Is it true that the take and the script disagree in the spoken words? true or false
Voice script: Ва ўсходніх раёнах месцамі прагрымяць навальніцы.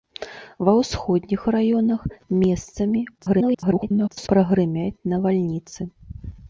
true